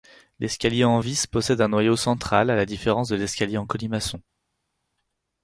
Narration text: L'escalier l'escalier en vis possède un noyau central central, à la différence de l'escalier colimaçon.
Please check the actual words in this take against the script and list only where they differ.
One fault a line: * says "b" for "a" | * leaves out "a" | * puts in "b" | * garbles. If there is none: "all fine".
* leaves out "l'escalier"
* leaves out "central"
* puts in "en"